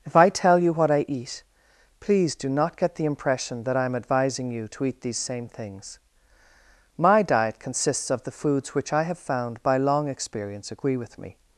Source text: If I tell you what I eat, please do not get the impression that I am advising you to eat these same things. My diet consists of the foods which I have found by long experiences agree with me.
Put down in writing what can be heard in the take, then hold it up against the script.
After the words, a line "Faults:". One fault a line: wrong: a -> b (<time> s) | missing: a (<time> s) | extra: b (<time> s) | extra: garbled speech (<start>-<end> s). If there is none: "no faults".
If I tell you what I eat, please do not get the impression that I am advising you to eat these same things. My diet consists of the foods which I have found by long experience agree with me.
Faults:
wrong: experiences -> experience (10.1 s)